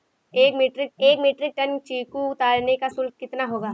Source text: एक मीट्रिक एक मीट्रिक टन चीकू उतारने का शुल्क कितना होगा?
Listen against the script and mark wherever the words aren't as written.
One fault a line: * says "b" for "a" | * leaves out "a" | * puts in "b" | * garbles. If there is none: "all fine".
all fine